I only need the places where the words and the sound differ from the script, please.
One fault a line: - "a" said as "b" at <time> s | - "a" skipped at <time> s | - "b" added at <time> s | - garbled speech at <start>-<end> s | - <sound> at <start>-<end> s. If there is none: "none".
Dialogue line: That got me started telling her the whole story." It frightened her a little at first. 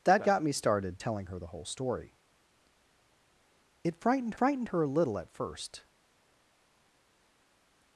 - "frightened" added at 4.4 s